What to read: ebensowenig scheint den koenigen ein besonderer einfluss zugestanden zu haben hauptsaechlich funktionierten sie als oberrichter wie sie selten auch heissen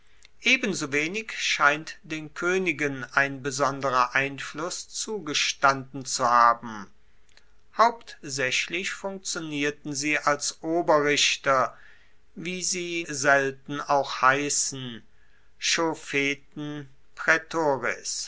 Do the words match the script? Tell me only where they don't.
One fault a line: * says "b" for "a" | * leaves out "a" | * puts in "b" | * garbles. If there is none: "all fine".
all fine